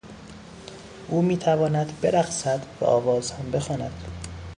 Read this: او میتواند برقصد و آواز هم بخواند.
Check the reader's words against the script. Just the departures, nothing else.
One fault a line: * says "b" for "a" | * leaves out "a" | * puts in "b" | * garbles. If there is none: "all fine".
all fine